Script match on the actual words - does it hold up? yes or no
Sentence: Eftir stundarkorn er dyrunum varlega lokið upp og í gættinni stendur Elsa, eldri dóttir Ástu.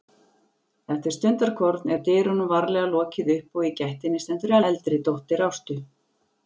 no